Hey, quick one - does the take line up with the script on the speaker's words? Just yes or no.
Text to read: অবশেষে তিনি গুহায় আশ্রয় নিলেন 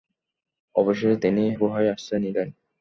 yes